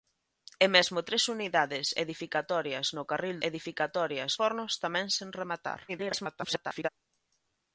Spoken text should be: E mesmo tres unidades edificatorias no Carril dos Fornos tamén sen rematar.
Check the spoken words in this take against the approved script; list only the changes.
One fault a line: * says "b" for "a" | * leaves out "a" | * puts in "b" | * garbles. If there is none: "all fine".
* says "edificatorias" for "dos"
* garbles